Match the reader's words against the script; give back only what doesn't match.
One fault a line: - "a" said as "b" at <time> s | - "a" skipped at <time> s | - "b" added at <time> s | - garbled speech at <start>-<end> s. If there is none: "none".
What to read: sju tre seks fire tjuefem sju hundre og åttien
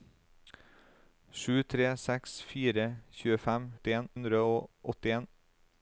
- "sju" said as "åttien" at 3.8 s